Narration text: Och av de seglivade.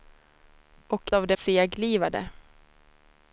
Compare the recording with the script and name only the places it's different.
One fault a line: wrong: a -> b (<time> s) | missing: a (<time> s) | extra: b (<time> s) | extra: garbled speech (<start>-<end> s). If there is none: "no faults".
no faults